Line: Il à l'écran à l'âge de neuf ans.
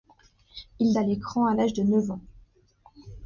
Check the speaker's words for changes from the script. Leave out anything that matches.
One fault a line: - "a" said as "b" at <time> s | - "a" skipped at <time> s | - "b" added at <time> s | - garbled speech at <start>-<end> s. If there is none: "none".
none